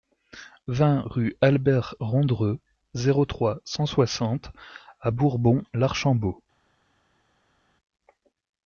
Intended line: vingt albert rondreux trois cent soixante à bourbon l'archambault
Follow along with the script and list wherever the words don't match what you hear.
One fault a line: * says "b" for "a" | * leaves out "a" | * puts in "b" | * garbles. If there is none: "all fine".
* puts in "rue"
* puts in "zéro"